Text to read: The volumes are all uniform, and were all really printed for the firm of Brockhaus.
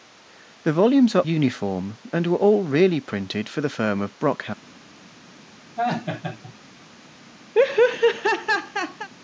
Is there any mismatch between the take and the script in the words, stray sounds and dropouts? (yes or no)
yes